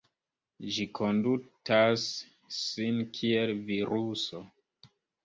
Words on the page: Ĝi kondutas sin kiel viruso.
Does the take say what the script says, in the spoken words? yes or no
yes